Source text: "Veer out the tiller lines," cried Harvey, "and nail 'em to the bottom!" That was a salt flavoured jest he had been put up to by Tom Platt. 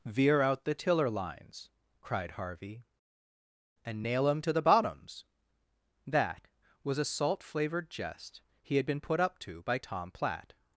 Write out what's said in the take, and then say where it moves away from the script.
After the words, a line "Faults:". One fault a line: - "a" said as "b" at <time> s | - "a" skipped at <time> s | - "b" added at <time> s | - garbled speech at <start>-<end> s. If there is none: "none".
"Veer out the tiller lines," cried Harvey, "and nail 'em to the bottoms!" That was a salt flavoured jest he had been put up to by Tom Platt.
Faults:
- "bottom" said as "bottoms" at 4.6 s